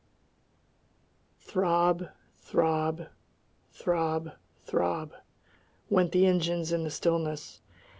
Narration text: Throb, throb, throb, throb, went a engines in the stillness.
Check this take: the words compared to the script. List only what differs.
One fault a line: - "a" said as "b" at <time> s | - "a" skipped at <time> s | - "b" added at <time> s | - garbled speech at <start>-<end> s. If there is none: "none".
- "a" said as "the" at 6.1 s